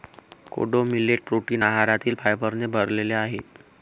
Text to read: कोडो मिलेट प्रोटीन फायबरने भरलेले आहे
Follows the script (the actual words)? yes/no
no